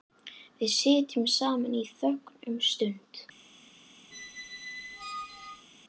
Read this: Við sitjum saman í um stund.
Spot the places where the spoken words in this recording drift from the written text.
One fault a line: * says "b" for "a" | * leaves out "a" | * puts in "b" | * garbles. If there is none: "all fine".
* puts in "þögn"